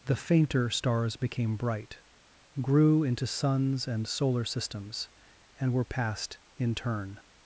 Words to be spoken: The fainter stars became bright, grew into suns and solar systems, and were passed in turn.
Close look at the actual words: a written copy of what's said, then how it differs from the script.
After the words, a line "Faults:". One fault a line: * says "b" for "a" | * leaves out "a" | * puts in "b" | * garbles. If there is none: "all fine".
The fainter stars became bright, grew into suns and solar systems, and were passed in turn.
Faults:
all fine